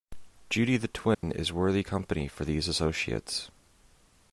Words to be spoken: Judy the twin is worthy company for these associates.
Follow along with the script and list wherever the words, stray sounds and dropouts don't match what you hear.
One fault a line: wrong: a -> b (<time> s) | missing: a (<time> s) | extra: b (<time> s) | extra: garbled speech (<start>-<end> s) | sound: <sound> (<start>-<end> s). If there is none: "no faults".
sound: dropout (1.1-1.2 s)